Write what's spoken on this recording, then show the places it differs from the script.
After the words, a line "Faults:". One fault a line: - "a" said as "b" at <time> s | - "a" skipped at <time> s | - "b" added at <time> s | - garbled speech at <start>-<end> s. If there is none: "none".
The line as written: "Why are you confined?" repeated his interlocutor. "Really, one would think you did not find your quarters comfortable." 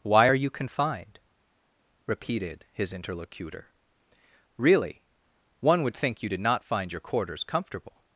"Why are you confined?" repeated his interlocutor. "Really, one would think you did not find your quarters comfortable."
Faults:
none